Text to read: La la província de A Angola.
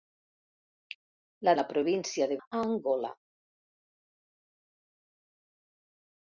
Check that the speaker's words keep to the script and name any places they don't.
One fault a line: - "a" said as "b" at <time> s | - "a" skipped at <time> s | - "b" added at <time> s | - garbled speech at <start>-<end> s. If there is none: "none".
none